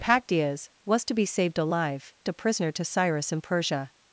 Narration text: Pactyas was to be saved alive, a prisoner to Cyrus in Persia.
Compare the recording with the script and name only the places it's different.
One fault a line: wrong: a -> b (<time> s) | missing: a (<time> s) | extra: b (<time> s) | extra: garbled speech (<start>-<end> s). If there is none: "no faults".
no faults